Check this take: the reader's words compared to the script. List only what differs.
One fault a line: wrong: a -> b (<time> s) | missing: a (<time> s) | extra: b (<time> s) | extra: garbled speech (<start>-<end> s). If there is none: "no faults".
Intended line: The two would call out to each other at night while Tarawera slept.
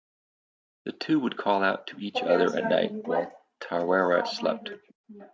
no faults